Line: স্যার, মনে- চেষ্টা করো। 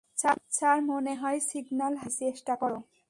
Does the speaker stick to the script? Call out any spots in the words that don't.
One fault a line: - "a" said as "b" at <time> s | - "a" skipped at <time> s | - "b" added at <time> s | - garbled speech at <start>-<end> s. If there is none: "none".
- "হয় সিগন্যাল হারিয়েছি" added at 1.1 s